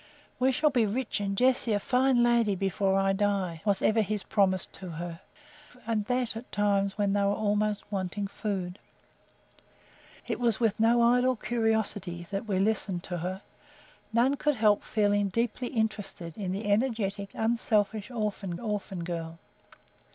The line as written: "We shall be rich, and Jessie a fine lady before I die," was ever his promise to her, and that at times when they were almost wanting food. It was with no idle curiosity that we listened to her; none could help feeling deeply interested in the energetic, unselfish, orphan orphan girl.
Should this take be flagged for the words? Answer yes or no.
no